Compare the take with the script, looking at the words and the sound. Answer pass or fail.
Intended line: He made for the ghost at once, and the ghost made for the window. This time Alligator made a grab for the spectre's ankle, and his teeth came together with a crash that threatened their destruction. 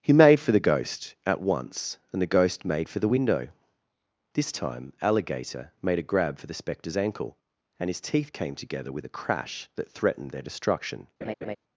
fail